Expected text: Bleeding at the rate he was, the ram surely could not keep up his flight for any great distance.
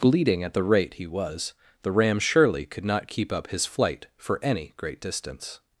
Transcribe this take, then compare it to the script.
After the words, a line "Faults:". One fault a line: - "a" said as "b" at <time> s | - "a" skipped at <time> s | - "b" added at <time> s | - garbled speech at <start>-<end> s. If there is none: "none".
Bleeding at the rate he was, the ram surely could not keep up his flight for any great distance.
Faults:
none